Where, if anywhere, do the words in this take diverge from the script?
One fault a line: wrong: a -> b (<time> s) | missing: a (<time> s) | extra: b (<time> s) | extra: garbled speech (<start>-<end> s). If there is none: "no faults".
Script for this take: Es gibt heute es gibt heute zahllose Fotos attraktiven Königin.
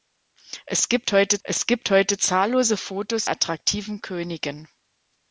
no faults